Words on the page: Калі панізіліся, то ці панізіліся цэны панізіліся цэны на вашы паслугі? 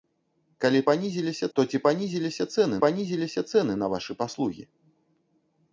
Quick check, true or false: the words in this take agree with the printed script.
true